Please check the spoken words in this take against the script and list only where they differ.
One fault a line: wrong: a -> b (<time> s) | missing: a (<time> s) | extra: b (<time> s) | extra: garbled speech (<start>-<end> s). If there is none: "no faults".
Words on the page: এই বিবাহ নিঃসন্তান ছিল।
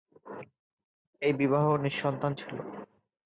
no faults